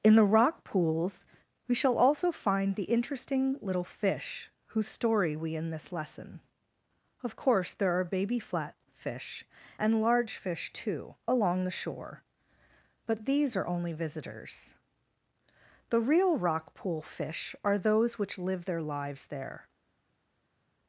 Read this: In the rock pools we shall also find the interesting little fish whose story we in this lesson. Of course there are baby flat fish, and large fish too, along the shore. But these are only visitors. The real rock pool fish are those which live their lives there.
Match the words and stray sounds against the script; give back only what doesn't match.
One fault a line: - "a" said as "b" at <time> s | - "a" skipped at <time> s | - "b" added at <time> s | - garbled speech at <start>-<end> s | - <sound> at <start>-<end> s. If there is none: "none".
none